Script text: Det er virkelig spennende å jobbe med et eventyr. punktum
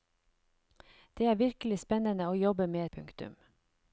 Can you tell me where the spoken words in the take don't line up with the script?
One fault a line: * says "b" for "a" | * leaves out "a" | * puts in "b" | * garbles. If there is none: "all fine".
* leaves out "et eventyr"